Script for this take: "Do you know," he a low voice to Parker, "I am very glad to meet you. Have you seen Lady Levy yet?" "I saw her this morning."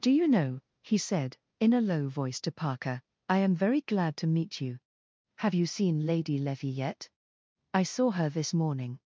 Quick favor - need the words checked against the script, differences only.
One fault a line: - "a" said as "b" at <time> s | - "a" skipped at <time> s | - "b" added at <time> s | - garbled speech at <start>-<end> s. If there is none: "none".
- "said in" added at 1.0 s